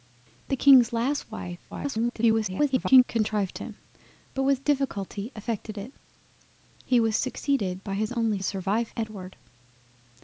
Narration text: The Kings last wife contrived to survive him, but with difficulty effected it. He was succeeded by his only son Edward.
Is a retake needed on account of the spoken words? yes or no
yes